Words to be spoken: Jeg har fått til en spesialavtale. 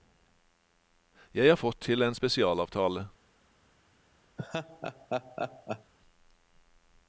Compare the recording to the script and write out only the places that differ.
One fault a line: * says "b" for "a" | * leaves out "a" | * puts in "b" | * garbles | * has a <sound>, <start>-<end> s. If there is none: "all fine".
* has a laugh, 4.4-5.9 s